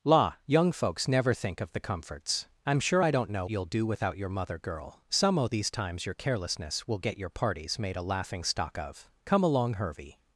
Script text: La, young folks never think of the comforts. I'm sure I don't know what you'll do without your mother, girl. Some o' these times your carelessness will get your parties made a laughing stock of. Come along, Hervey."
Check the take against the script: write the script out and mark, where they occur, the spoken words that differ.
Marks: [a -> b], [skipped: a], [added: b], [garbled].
La, young folks never think of the comforts. I'm sure I don't know [skipped: what] you'll do without your mother, girl. Some o' these times your carelessness will get your parties made a laughing stock of. Come along, Hervey."